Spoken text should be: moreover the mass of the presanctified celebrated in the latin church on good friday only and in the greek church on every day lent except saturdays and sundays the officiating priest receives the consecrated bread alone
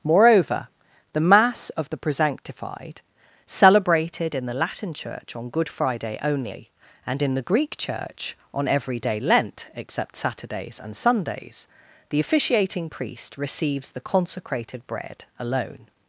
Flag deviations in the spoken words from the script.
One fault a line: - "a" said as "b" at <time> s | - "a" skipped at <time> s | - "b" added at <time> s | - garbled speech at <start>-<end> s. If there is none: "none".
none